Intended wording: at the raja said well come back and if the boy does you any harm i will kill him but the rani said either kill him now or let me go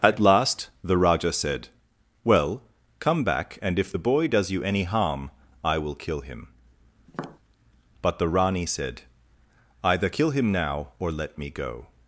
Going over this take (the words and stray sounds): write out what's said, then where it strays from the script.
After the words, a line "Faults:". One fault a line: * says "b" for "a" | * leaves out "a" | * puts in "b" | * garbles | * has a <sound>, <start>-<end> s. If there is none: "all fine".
at last the raja said well come back and if the boy does you any harm i will kill him but the rani said either kill him now or let me go
Faults:
* puts in "last"
* has a tap, 7.1-7.4 s